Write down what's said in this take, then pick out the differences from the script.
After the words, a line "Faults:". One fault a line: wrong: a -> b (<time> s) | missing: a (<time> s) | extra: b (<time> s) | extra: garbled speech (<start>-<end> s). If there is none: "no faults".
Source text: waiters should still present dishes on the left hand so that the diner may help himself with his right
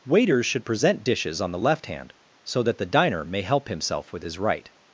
waiters should present dishes on the left hand so that the diner may help himself with his right
Faults:
missing: still (0.7 s)